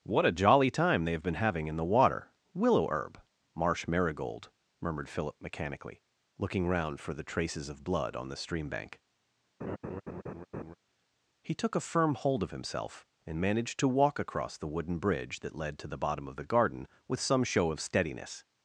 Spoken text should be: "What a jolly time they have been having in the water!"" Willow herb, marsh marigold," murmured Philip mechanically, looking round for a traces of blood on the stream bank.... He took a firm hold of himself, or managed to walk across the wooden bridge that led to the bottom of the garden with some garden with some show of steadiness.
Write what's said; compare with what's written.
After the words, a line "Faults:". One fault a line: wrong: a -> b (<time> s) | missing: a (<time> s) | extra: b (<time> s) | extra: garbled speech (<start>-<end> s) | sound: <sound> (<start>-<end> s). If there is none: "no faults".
"What a jolly time they have been having in the water!"" Willow herb, marsh marigold," murmured Philip mechanically, looking round for the traces of blood on the stream bank.... He took a firm hold of himself, and managed to walk across the wooden bridge that led to the bottom of the garden with some show of steadiness.
Faults:
wrong: a -> the (7.1 s)
sound: laugh (9.6-10.7 s)
wrong: or -> and (13.3 s)
missing: garden with some (17.4 s)